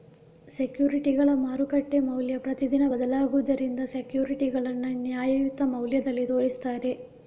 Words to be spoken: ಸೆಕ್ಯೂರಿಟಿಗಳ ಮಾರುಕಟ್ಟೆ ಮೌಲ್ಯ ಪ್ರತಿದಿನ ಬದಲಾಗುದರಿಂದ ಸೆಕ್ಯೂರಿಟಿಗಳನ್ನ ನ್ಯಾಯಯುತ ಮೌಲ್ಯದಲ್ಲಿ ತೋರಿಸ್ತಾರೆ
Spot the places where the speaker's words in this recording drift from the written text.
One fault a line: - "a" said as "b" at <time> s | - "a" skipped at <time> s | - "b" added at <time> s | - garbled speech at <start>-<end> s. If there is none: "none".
none